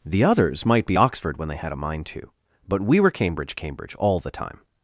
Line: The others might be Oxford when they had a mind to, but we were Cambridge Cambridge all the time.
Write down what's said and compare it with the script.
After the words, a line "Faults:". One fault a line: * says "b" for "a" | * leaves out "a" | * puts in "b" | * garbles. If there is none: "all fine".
The others might be Oxford when they had a mind to, but we were Cambridge Cambridge all the time.
Faults:
all fine